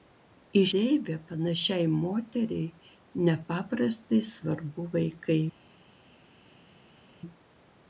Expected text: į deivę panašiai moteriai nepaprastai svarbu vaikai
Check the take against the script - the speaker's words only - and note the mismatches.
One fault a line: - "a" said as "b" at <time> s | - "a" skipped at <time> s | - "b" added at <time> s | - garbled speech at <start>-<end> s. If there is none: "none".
none